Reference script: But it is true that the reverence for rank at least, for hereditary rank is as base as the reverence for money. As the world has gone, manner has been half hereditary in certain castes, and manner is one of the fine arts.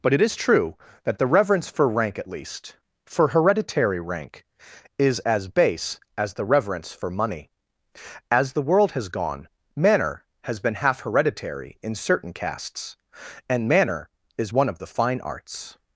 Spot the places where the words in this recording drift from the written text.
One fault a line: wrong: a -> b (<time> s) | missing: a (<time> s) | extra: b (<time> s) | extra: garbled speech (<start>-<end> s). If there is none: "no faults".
no faults